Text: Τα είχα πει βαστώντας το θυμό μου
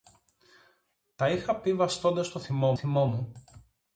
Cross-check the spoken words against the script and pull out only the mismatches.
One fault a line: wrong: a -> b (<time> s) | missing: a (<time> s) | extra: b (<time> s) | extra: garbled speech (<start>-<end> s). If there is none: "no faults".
extra: θυμό (2.7 s)